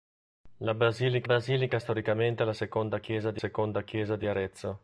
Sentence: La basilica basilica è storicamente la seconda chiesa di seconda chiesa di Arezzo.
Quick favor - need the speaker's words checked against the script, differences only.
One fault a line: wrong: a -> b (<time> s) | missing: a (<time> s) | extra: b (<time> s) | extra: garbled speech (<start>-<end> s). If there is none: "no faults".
no faults